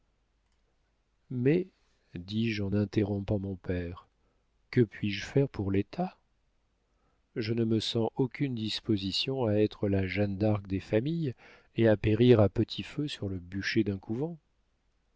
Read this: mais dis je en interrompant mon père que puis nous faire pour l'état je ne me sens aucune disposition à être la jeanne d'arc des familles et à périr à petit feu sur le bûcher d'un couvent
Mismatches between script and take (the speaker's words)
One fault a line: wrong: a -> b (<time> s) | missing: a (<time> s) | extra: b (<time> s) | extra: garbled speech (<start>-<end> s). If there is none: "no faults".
wrong: nous -> je (5.1 s)